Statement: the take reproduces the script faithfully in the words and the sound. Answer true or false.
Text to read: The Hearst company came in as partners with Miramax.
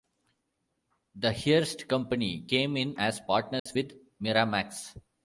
false